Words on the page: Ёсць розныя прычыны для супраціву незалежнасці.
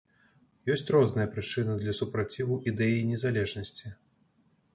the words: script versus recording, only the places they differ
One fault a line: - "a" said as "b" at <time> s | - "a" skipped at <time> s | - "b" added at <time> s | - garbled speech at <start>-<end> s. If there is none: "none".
- "ідэі" added at 2.7 s